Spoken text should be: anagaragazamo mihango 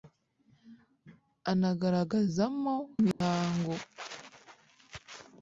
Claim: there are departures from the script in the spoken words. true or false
false